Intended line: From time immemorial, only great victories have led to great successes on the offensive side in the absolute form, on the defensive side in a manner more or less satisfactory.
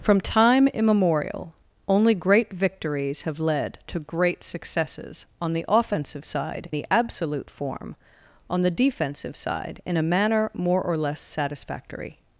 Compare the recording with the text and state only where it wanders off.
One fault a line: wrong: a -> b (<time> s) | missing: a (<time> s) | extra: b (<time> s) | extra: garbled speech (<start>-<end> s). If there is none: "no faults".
missing: in (6.7 s)